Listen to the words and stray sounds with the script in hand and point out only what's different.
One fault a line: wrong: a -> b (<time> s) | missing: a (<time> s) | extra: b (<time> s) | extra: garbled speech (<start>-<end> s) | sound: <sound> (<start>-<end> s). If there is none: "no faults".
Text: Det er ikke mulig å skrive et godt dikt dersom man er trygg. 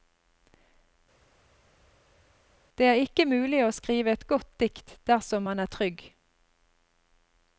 no faults